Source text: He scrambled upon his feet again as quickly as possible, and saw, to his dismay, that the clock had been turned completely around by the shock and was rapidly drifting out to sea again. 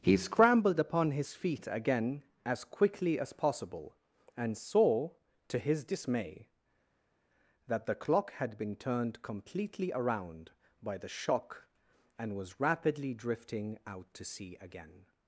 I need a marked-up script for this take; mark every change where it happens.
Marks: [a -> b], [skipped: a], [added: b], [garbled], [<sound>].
He scrambled upon his feet again as quickly as possible, and saw, to his dismay, that the clock had been turned completely around by the shock and was rapidly drifting out to sea again.